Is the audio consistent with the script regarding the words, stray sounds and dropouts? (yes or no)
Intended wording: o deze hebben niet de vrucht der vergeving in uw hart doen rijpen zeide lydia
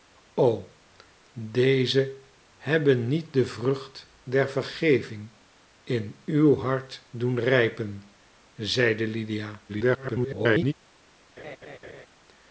no